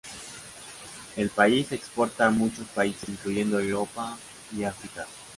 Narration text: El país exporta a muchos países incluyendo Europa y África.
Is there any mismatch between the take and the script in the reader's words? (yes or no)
no